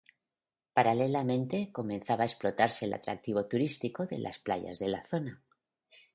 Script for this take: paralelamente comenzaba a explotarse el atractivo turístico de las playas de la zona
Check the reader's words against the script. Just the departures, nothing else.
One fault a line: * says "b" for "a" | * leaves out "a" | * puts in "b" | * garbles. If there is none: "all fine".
all fine